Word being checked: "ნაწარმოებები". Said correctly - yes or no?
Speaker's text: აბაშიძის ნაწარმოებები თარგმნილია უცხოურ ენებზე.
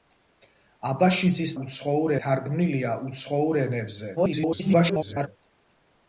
no